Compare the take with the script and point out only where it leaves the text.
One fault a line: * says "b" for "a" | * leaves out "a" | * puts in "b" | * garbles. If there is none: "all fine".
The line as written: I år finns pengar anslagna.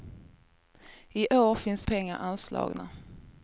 all fine